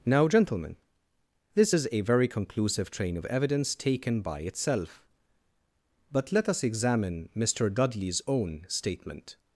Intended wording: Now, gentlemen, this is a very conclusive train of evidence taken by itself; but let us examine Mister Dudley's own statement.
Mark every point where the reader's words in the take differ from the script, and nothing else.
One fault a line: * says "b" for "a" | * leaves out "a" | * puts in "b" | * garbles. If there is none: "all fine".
all fine